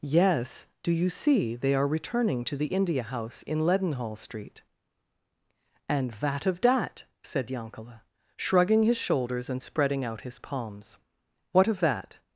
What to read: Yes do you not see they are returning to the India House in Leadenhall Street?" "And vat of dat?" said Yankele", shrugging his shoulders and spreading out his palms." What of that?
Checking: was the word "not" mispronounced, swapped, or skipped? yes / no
yes